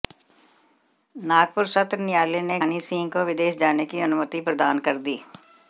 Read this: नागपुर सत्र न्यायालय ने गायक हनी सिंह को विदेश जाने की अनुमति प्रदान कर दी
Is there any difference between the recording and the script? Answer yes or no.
yes